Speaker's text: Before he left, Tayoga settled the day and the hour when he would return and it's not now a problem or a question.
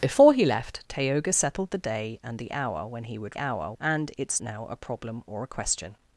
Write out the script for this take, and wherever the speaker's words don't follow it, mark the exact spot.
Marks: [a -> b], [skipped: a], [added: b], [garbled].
Before he left, Tayoga settled the day and the hour when he would [return -> hour] and it's [skipped: not] now a problem or a question.